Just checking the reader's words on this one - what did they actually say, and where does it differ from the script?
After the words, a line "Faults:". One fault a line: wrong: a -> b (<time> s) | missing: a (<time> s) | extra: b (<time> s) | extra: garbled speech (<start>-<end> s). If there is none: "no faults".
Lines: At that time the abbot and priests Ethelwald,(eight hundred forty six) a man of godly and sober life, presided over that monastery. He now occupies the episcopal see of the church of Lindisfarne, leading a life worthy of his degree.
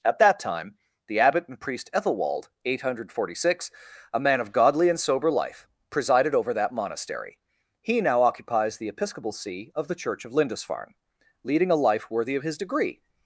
At that time the abbot and priest Ethelwald,(eight hundred forty six) a man of godly and sober life, presided over that monastery. He now occupies the episcopal see of the church of Lindisfarne, leading a life worthy of his degree.
Faults:
wrong: priests -> priest (1.6 s)